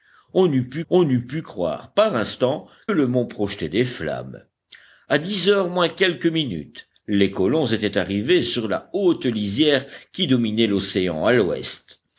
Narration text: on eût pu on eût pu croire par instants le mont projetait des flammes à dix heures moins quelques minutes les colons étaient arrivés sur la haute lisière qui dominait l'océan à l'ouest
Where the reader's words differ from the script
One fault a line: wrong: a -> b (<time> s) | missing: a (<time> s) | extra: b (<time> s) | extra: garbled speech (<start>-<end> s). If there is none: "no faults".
no faults